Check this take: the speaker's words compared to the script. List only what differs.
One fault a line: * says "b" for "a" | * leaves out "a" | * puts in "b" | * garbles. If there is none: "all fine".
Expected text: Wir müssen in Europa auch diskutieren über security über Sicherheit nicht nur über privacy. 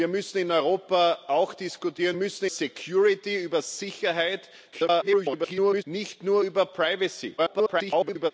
* says "müssen" for "über"
* garbles
* garbles